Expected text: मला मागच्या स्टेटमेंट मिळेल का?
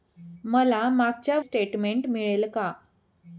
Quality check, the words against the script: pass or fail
pass